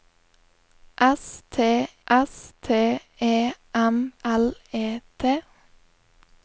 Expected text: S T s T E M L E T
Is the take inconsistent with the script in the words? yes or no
no